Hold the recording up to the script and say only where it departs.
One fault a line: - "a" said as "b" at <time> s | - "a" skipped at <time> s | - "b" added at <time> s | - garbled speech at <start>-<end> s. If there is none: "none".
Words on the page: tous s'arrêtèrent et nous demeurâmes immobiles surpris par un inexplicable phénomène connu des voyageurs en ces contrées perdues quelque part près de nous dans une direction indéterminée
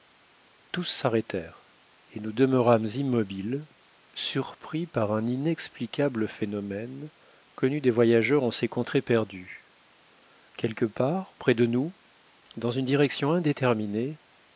none